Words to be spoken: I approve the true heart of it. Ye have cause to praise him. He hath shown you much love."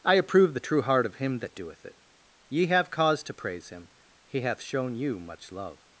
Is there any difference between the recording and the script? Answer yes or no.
yes